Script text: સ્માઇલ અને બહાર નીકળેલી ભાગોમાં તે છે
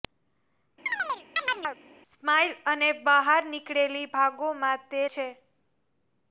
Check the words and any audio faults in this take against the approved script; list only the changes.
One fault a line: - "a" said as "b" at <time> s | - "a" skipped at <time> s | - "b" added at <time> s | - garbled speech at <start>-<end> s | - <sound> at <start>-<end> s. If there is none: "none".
- chirp at 0.9-1.8 s